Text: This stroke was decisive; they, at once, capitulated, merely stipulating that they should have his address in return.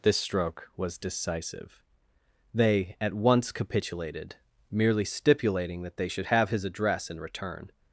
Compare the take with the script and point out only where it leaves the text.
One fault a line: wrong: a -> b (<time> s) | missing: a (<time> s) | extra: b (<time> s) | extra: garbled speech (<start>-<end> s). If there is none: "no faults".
no faults